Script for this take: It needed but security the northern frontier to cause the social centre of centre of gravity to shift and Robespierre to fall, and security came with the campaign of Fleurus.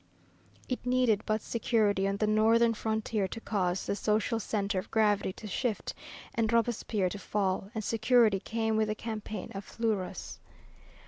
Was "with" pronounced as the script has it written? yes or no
yes